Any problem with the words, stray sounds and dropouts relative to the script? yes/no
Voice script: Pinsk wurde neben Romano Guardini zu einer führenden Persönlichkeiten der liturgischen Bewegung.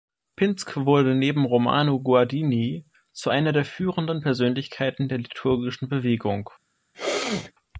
yes